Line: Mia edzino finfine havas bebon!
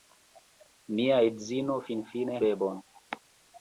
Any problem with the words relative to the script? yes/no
yes